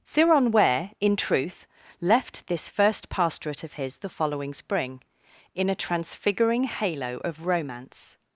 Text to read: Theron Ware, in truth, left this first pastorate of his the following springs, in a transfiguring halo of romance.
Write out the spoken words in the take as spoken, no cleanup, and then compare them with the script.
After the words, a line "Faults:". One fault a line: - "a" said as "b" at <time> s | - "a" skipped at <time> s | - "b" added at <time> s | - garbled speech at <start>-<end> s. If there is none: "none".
Theron Ware, in truth, left this first pastorate of his the following spring, in a transfiguring halo of romance.
Faults:
- "springs" said as "spring" at 4.5 s